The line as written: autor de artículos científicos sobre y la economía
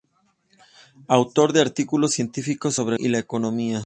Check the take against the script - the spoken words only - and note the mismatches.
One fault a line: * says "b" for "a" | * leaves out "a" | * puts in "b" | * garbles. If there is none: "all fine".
all fine